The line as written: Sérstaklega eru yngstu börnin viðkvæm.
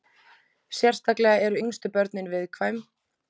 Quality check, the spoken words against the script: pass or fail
pass